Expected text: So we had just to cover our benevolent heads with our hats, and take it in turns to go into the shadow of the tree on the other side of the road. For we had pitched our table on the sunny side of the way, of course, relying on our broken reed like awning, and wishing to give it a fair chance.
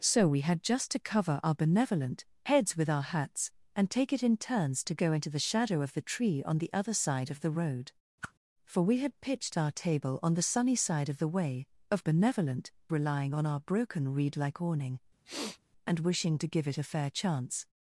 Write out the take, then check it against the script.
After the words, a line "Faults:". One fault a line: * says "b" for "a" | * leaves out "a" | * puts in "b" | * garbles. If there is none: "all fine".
So we had just to cover our benevolent heads with our hats, and take it in turns to go into the shadow of the tree on the other side of the road. For we had pitched our table on the sunny side of the way, of benevolent, relying on our broken reed like awning, and wishing to give it a fair chance.
Faults:
* says "benevolent" for "course"